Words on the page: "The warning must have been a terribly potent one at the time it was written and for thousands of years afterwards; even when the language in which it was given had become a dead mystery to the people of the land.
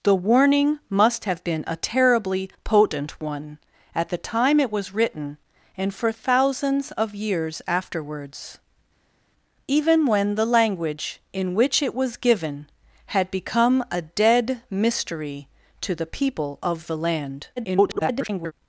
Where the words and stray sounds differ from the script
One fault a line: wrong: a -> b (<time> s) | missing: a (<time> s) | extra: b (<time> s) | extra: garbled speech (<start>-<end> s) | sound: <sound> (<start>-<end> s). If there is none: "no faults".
extra: garbled speech (17.6-18.5 s)